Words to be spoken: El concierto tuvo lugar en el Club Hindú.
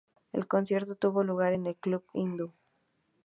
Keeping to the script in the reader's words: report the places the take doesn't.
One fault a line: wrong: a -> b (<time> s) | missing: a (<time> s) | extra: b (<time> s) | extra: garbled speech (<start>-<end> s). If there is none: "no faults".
no faults